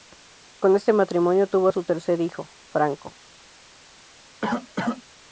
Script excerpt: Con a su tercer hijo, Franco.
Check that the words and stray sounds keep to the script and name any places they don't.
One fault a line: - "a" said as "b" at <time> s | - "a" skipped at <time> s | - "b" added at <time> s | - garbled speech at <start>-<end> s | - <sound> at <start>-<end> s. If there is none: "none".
- "este matrimonio tuvo" added at 0.8 s
- cough at 4.4-5.0 s